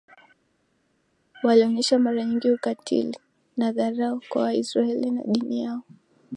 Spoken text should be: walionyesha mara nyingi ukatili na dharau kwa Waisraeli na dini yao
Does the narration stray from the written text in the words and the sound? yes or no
no